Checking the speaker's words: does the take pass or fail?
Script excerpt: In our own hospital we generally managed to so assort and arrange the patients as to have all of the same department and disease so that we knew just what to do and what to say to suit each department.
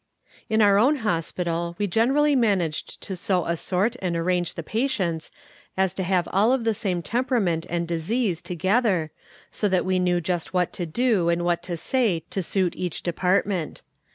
fail